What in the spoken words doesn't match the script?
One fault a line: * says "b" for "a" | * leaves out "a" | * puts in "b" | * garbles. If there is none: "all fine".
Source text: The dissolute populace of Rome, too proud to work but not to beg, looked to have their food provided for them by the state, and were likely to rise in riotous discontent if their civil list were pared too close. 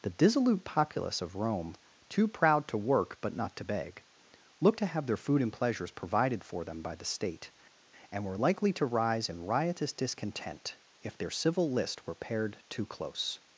* puts in "and pleasures"